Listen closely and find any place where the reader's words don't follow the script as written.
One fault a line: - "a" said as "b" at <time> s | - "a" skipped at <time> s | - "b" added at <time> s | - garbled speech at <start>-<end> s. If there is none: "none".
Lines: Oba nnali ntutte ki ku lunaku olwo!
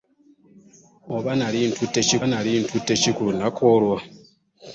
- "nnali ntutte ki" added at 2.3 s